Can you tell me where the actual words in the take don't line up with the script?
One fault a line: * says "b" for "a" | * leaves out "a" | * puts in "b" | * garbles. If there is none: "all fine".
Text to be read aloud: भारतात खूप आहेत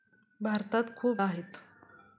all fine